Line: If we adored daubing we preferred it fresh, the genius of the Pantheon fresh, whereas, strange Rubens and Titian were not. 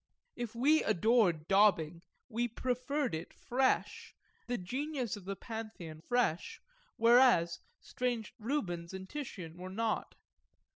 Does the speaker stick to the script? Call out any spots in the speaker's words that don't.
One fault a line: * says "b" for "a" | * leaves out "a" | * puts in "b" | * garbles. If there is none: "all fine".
all fine